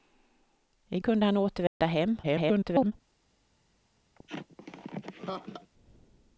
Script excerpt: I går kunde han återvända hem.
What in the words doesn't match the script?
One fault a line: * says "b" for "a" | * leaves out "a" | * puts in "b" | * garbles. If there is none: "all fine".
* leaves out "går"
* garbles